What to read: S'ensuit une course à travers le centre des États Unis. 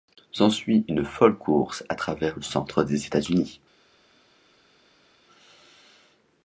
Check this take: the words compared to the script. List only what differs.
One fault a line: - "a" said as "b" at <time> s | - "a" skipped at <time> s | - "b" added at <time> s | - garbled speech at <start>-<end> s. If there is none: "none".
- "folle" added at 1.1 s